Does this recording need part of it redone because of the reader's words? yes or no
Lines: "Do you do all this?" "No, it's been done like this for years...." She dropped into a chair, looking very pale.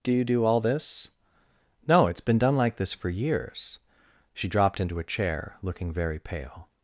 no